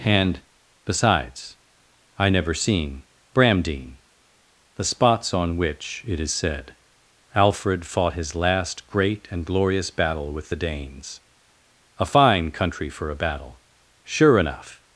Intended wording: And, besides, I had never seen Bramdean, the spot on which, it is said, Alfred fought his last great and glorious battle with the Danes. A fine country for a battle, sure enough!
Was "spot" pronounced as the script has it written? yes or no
no